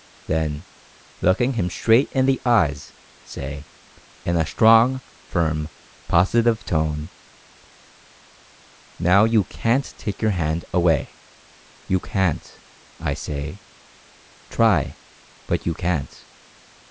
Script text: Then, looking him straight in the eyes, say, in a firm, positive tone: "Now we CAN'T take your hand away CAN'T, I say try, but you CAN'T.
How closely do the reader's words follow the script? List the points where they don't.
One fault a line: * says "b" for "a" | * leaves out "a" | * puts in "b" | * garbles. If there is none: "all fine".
* puts in "strong"
* says "you" for "we"
* puts in "you"